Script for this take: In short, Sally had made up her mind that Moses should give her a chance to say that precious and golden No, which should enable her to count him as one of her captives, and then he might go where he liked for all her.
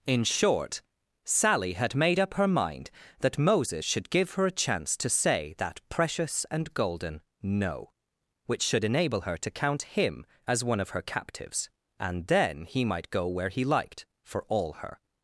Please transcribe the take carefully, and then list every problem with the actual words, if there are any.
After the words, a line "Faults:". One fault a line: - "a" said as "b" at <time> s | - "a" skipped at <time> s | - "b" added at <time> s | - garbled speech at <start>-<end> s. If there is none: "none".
In short, Sally had made up her mind that Moses should give her a chance to say that precious and golden No, which should enable her to count him as one of her captives, and then he might go where he liked for all her.
Faults:
none